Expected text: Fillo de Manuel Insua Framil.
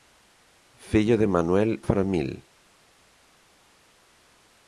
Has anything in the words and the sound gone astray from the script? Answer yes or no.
yes